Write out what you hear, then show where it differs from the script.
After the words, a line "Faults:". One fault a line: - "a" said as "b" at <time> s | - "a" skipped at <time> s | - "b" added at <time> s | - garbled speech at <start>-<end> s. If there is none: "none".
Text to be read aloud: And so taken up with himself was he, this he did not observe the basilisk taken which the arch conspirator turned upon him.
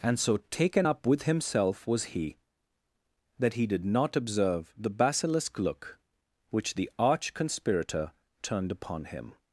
And so taken up with himself was he, that he did not observe the basilisk look which the arch conspirator turned upon him.
Faults:
- "this" said as "that" at 3.4 s
- "taken" said as "look" at 5.6 s